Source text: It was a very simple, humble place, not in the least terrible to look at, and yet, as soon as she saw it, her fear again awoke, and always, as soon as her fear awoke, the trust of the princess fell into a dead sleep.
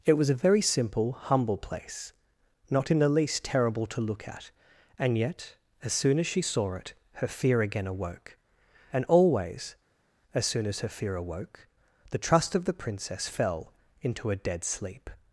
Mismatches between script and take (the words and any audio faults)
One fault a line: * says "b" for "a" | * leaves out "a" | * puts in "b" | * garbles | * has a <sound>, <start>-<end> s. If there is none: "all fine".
all fine